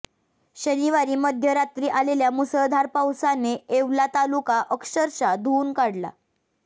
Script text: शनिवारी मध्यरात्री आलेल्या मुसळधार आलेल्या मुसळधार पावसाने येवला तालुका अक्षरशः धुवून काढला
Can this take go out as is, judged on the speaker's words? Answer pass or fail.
fail